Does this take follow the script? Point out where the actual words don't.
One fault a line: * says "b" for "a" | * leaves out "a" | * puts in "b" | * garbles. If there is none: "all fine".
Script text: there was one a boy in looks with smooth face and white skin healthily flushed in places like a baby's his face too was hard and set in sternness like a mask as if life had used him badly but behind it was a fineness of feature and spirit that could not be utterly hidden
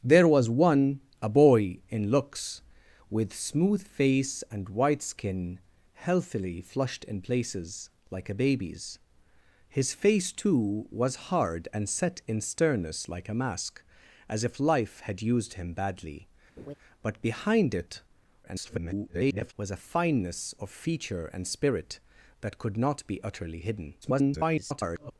* garbles
* garbles